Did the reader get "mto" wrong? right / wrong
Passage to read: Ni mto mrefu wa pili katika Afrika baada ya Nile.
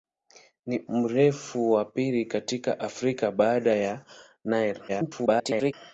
wrong